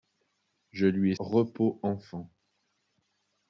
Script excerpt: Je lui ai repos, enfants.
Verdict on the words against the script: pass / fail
pass